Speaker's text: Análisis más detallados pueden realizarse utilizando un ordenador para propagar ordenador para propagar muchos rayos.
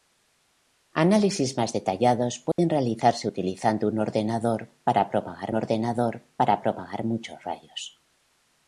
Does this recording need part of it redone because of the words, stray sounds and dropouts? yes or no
yes